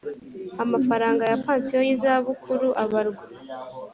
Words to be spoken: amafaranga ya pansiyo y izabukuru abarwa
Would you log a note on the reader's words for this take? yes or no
no